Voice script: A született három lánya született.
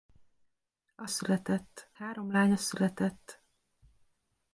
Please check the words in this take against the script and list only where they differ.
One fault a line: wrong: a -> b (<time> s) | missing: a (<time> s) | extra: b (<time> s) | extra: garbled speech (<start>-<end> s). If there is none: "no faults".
no faults